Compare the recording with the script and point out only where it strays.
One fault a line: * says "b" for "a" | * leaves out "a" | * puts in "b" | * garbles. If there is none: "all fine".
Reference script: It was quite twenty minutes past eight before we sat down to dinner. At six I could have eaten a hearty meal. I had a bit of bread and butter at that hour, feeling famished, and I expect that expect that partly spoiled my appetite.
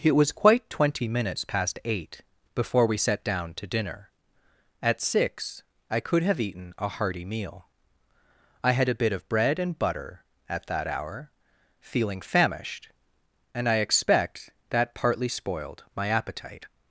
* leaves out "expect that"